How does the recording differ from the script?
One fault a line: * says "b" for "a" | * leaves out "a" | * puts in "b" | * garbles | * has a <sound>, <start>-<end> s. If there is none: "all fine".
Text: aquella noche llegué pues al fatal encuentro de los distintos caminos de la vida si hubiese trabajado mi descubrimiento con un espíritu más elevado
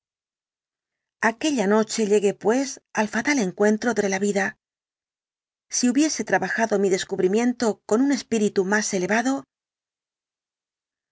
* leaves out "los distintos caminos"